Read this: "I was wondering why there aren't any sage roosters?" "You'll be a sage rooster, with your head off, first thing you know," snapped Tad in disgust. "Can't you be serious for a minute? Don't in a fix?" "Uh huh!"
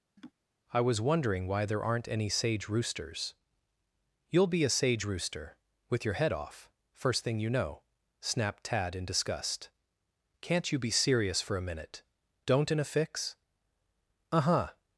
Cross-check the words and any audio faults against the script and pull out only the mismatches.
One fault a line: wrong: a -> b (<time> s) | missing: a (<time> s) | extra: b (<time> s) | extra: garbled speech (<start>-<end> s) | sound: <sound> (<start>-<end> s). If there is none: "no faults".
sound: laugh (0.2-0.3 s)